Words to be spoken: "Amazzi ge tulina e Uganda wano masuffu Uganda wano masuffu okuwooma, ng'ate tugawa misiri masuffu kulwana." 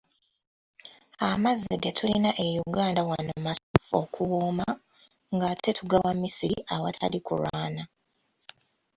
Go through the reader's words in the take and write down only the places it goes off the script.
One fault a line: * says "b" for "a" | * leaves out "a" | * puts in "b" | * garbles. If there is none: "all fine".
* leaves out "Uganda wano masuffu"
* says "awatali" for "masuffu"